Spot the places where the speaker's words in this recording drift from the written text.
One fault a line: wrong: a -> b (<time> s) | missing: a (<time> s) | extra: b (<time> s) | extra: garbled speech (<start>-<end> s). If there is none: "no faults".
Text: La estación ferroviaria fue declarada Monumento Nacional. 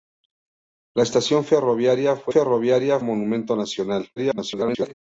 wrong: declarada -> ferroviaria (2.3 s)
extra: garbled speech (4.2-4.9 s)